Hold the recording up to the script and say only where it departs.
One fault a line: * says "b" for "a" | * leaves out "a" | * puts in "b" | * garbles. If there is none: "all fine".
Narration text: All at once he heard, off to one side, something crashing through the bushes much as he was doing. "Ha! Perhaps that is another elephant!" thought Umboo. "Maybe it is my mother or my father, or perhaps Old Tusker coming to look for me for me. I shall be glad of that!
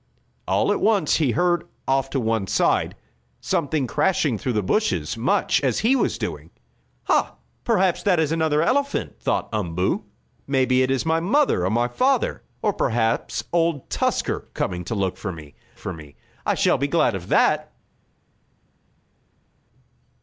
all fine